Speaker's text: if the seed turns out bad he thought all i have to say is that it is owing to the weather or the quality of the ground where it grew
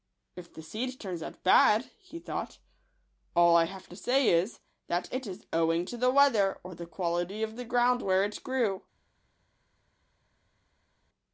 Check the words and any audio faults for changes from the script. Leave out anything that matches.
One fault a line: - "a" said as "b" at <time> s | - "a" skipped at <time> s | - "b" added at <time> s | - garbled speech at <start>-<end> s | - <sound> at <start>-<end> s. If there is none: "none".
none